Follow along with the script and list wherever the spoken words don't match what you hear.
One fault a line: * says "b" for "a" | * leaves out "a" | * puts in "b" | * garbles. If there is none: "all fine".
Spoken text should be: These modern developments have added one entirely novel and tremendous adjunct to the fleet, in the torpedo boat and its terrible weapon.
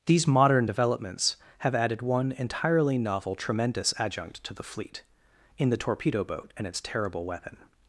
* leaves out "and"